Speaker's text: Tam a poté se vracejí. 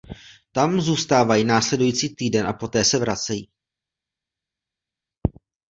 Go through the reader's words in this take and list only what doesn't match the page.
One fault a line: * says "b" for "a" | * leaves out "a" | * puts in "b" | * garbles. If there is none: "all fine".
* puts in "zůstávají následující týden"